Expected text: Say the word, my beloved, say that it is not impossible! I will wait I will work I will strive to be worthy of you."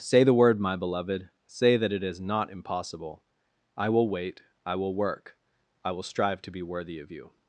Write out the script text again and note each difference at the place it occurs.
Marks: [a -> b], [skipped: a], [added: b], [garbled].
Say the word, my beloved, say that it is not impossible! I will wait I will work I will strive to be worthy of you."